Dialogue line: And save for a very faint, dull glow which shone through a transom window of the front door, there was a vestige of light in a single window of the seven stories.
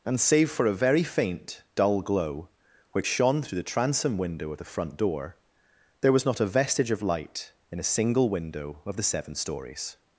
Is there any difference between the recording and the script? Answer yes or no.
yes